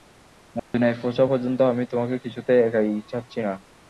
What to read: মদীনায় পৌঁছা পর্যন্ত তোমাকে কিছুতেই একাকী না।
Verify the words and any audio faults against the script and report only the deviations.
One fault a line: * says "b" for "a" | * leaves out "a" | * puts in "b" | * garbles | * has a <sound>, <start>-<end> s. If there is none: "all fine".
* has a dropout, 0.6-0.7 s
* puts in "আমি"
* puts in "ছাড়ছি"